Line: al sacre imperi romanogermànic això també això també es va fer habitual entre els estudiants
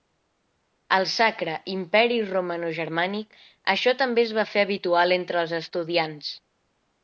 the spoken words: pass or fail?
fail